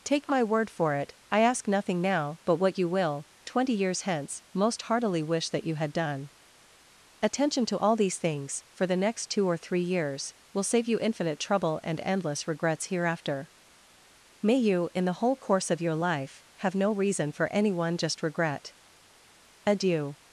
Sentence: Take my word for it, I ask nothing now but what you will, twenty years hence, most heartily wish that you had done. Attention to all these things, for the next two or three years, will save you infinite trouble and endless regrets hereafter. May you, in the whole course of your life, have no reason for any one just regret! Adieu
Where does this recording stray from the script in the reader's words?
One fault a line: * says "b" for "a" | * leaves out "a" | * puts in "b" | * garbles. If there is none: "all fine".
all fine